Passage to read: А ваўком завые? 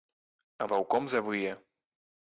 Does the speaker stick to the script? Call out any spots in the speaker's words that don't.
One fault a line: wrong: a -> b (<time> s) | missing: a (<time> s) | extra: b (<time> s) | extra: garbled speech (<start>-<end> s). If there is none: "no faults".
no faults